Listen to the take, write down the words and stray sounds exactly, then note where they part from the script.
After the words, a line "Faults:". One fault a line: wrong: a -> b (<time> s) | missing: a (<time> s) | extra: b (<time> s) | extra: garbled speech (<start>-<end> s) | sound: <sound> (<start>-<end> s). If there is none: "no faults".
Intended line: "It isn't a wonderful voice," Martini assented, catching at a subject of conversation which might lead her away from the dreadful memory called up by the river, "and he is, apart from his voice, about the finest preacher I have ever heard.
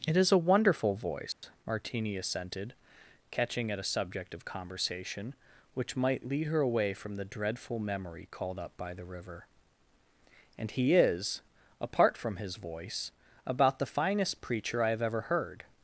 "It is a wonderful voice," Martini assented, catching at a subject of conversation which might lead her away from the dreadful memory called up by the river, "and he is, apart from his voice, about the finest preacher I have ever heard.
Faults:
wrong: isn't -> is (0.2 s)
sound: dropout (1.3-1.4 s)